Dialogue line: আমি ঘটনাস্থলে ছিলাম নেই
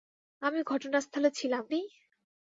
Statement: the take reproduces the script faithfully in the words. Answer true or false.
true